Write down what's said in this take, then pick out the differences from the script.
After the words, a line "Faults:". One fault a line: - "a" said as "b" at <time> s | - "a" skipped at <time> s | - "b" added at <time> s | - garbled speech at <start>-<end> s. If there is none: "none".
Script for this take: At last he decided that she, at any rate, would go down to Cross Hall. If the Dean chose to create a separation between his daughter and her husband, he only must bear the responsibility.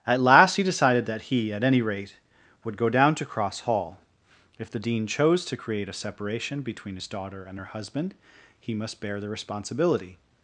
At last he decided that he, at any rate, would go down to Cross Hall. If the Dean chose to create a separation between his daughter and her husband, he must bear the responsibility.
Faults:
- "she" said as "he" at 1.2 s
- "only" skipped at 8.7 s